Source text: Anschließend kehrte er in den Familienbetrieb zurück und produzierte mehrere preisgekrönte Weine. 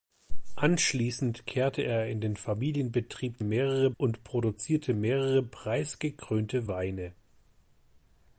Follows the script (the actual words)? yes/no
no